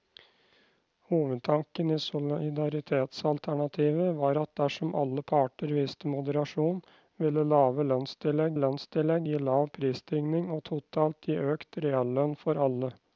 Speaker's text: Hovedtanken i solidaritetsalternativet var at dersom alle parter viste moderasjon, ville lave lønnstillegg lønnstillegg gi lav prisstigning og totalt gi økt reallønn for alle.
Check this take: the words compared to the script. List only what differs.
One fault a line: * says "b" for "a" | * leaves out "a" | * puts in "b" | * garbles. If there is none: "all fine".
all fine